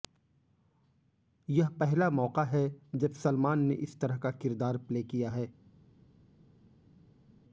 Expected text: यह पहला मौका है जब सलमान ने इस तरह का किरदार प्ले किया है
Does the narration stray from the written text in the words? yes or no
no